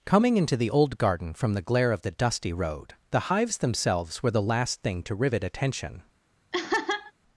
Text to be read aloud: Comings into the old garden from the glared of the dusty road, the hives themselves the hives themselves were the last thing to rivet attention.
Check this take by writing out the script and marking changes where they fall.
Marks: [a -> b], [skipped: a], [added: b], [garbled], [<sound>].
[Comings -> Coming] into the old garden from the [glared -> glare] of the dusty road, the hives themselves [skipped: the hives themselves] were the last thing to rivet attention. [laugh]